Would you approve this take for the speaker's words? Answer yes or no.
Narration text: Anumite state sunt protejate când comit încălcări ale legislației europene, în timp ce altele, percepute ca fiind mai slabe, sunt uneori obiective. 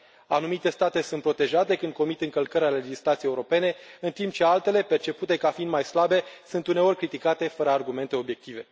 no